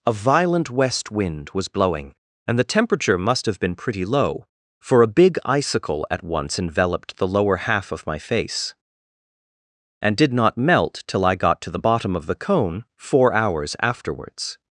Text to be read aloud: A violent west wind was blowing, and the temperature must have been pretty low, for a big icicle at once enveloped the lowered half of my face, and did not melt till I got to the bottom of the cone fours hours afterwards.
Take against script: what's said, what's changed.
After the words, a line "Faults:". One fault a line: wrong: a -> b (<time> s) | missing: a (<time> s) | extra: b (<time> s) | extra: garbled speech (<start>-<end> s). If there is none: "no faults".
A violent west wind was blowing, and the temperature must have been pretty low, for a big icicle at once enveloped the lower half of my face, and did not melt till I got to the bottom of the cone four hours afterwards.
Faults:
wrong: lowered -> lower (7.3 s)
wrong: fours -> four (13.0 s)